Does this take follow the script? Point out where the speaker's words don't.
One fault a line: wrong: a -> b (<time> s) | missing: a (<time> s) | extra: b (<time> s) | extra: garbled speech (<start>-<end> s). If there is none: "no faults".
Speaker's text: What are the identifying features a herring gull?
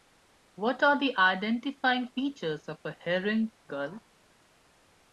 extra: of (2.7 s)